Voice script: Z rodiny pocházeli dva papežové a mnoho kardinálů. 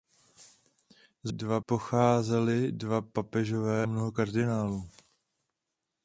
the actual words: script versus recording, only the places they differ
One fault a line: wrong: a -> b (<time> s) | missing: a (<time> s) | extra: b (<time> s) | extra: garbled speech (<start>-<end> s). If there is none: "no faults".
wrong: rodiny -> dva (1.3 s)
missing: a (3.9 s)